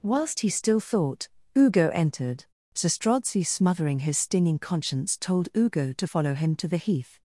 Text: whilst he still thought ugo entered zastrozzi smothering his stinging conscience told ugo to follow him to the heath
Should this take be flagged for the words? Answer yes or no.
no